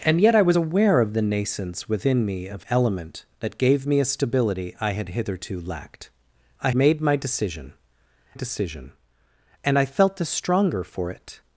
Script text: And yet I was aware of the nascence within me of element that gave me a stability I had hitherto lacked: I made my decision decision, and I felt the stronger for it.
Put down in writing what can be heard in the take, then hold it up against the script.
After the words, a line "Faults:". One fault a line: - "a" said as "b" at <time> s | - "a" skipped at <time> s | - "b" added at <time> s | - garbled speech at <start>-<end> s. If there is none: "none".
And yet I was aware of the nascence within me of element that gave me a stability I had hitherto lacked: I made my decision decision, and I felt the stronger for it.
Faults:
none